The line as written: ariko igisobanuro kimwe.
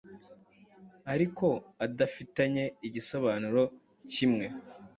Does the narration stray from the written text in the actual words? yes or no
yes